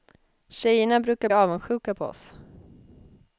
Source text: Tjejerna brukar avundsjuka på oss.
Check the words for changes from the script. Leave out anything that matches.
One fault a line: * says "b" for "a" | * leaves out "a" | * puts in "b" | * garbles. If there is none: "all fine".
all fine